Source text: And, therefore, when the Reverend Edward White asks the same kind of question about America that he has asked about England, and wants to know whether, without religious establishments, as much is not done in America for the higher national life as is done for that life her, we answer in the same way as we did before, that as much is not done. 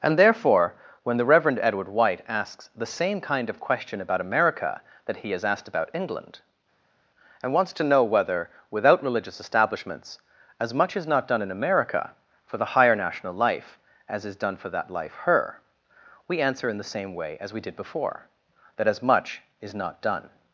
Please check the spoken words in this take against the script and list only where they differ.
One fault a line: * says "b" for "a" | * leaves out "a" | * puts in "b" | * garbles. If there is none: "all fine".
all fine